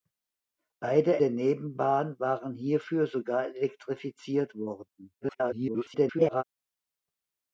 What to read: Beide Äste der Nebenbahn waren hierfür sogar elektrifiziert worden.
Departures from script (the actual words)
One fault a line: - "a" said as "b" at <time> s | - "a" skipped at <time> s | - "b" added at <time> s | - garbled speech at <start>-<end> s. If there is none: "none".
- "Äste" skipped at 1.2 s
- garbled speech at 5.2-6.4 s